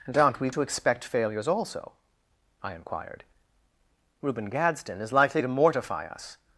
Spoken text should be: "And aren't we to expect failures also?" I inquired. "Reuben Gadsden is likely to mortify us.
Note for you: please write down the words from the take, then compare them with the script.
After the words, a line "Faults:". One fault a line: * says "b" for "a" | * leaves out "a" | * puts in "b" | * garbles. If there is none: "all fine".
"And aren't we to expect failures also?" I inquired. "Reuben Gadsden is likely to mortify us.
Faults:
all fine